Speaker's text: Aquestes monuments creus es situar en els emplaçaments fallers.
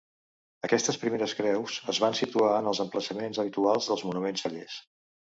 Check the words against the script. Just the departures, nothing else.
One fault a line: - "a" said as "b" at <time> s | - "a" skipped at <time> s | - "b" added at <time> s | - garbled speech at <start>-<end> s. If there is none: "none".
- "monuments" said as "primeres" at 1.0 s
- "van" added at 2.0 s
- "habituals dels monuments" added at 3.4 s